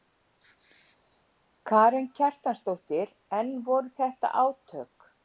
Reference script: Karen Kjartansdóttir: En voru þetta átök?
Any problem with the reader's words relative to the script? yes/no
no